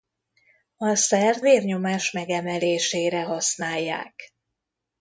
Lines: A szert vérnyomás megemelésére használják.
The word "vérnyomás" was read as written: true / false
true